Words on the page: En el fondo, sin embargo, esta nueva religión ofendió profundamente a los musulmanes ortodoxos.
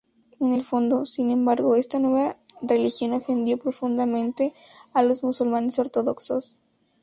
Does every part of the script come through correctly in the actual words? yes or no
yes